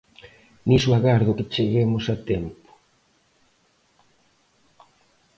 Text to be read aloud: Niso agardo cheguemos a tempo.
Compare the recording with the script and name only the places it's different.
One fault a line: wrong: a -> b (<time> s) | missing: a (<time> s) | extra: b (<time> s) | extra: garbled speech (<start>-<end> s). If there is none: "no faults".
extra: que (1.3 s)